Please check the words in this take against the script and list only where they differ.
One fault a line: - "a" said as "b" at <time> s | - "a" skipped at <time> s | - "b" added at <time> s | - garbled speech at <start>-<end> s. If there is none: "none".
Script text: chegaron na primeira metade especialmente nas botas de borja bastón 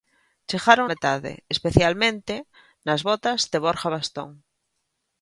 - "na primeira" skipped at 0.9 s